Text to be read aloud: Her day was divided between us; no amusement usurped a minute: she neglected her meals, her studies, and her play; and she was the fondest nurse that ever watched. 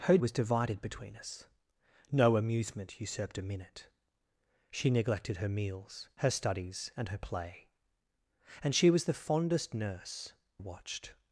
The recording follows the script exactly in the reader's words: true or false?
false